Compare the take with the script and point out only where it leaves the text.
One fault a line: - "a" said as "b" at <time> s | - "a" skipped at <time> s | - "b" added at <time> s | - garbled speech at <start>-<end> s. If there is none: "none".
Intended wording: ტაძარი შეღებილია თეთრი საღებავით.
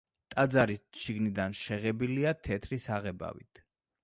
- "შიგნიდან" added at 1.0 s